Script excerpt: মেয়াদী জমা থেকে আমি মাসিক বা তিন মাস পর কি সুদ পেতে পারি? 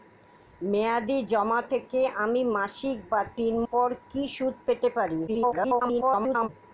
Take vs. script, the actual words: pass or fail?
fail